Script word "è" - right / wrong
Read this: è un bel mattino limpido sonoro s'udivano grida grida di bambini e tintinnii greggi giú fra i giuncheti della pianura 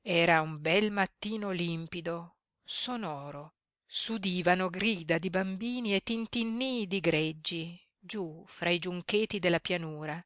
wrong